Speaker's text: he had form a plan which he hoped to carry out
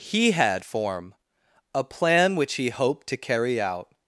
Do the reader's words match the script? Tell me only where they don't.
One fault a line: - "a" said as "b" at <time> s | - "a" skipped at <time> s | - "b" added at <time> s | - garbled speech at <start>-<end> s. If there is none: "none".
none